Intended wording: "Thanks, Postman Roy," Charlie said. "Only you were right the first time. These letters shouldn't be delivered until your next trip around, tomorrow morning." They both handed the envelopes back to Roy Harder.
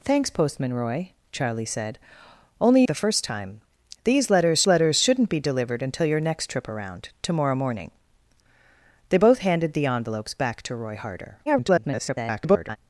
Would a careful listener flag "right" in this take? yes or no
yes